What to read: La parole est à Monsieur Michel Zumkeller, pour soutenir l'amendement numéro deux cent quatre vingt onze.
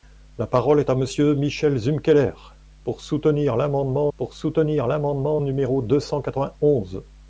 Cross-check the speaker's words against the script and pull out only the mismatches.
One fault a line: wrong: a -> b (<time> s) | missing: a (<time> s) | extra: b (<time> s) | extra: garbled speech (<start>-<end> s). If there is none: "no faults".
extra: pour soutenir l'amendement (4.2 s)